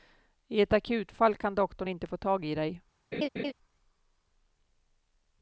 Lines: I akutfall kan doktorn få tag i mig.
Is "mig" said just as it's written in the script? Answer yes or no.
no